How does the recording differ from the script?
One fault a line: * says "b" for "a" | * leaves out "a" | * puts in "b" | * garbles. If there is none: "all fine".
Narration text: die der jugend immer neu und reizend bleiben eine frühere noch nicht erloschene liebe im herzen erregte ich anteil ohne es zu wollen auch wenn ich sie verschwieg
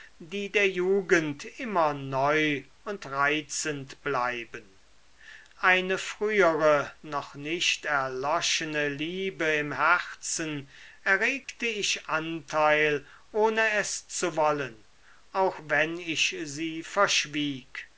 all fine